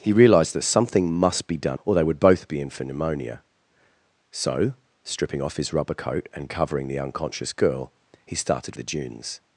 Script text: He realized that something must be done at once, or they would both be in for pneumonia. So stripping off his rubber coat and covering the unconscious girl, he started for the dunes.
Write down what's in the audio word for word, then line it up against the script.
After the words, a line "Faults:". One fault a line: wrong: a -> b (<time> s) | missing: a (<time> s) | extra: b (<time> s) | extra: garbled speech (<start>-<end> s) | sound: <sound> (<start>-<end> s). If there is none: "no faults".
He realized that something must be done or they would both be in for pneumonia. So stripping off his rubber coat and covering the unconscious girl, he started the dunes.
Faults:
missing: at once (1.8 s)
missing: for (8.8 s)